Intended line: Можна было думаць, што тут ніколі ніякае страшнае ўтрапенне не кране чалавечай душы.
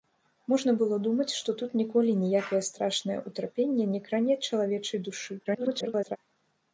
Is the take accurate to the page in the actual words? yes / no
no